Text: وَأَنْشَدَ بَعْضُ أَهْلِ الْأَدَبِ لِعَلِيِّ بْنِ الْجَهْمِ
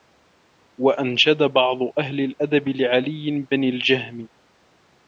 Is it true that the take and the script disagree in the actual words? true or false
false